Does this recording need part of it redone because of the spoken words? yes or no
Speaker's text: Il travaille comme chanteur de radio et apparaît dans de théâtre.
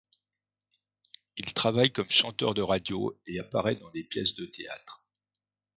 yes